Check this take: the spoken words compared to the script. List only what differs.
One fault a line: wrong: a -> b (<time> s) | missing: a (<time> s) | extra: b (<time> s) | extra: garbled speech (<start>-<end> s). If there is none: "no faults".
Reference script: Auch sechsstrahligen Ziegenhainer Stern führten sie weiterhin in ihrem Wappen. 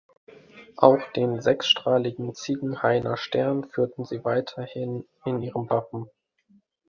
extra: den (1.1 s)